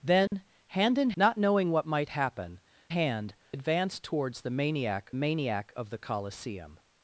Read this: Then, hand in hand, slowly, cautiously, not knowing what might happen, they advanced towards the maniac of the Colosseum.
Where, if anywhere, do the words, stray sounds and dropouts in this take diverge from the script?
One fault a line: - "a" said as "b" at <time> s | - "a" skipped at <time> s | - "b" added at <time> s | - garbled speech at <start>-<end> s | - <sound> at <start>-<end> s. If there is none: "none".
- dropout at 0.3-0.3 s
- "hand slowly cautiously" skipped at 1.1 s
- "they" said as "hand" at 2.9 s
- "maniac" added at 5.1 s